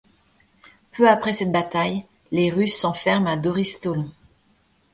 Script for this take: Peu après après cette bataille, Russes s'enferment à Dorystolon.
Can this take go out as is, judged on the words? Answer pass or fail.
fail